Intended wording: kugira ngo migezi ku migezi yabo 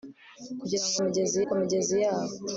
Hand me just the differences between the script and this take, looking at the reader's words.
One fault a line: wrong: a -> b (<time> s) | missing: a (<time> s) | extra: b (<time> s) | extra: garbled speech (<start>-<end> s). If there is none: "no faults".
no faults